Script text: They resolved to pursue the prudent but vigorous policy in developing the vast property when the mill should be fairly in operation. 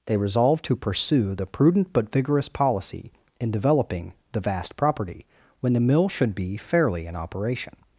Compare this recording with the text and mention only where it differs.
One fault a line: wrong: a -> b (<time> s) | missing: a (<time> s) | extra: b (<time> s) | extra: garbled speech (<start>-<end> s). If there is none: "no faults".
no faults